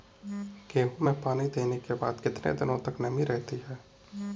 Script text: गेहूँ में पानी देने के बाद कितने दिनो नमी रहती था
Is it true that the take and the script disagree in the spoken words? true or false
true